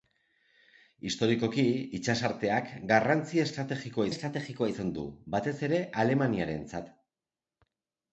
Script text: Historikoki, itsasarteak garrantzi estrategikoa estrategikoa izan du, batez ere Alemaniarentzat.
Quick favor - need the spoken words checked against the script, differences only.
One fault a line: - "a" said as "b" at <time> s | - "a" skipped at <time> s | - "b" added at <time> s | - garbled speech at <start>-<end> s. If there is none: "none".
none